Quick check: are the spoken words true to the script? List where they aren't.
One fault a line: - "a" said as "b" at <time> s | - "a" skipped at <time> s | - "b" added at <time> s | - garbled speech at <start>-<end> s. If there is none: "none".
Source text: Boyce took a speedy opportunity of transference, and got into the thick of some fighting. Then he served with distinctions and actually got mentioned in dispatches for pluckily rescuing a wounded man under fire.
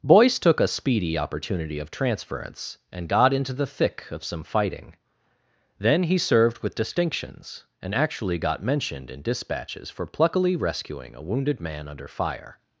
none